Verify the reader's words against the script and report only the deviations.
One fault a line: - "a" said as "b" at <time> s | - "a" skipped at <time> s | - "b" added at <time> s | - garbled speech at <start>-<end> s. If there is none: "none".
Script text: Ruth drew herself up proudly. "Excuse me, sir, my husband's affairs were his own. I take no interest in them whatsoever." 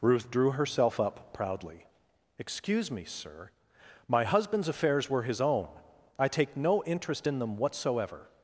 none